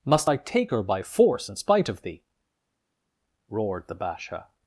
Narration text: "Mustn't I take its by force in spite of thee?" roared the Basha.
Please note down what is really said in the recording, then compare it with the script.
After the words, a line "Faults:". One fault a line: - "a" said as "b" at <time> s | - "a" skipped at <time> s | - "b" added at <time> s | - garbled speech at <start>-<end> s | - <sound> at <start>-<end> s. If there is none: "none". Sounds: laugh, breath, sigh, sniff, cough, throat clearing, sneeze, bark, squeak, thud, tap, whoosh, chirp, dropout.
"Must I take her by force in spite of thee?" roared the Basha.
Faults:
- "Mustn't" said as "Must" at 0.0 s
- "its" said as "her" at 0.7 s